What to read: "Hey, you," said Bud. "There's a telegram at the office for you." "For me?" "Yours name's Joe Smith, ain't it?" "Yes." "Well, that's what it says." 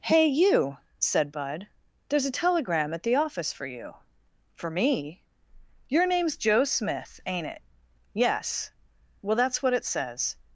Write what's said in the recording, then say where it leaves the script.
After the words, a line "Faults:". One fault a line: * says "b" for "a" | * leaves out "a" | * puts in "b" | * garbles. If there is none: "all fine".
"Hey, you," said Bud. "There's a telegram at the office for you." "For me?" "Your name's Joe Smith, ain't it?" "Yes." "Well, that's what it says."
Faults:
* says "Your" for "Yours"